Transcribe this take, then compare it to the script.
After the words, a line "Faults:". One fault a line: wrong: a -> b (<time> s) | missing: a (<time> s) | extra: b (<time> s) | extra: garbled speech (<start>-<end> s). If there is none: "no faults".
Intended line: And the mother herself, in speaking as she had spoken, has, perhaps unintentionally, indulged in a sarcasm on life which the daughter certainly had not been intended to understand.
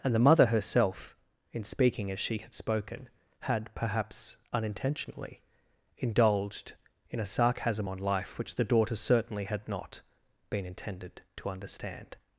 And the mother herself, in speaking as she had spoken, had, perhaps unintentionally, indulged in a sarcasm on life which the daughter certainly had not been intended to understand.
Faults:
wrong: has -> had (3.4 s)